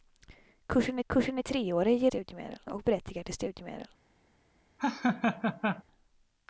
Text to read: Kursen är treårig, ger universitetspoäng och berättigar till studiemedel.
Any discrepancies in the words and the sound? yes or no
yes